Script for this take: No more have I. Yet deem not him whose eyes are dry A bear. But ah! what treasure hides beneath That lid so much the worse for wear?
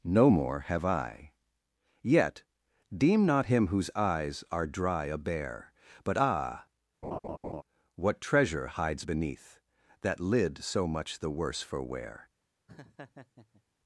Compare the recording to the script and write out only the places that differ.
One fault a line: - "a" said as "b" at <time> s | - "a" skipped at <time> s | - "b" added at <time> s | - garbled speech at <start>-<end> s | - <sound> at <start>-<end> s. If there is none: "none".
- laugh at 7.0-7.6 s
- laugh at 12.7-13.6 s